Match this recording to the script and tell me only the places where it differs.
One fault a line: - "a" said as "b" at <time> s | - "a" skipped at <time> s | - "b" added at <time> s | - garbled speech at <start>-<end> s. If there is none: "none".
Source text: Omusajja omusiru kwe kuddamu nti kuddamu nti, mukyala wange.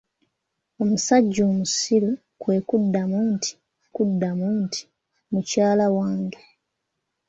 none